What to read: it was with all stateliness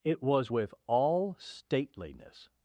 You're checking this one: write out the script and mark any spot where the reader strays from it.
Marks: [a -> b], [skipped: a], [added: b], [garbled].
it was with all stateliness